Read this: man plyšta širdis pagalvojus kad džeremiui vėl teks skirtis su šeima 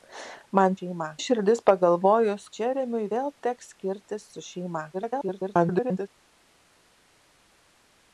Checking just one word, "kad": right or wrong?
wrong